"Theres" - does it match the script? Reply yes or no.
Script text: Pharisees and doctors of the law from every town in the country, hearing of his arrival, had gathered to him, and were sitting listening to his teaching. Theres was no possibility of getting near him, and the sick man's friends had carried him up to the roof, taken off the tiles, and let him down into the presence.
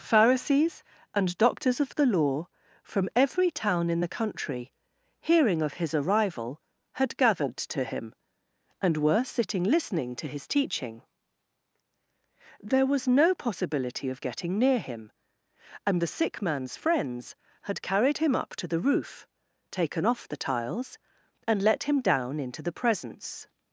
no